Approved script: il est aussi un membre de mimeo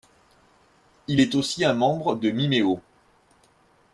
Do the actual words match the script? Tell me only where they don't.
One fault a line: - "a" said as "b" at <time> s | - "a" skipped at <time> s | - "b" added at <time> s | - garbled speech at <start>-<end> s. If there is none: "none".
none